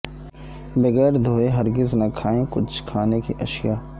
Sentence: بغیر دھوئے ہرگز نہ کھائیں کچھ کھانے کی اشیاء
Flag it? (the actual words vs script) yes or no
no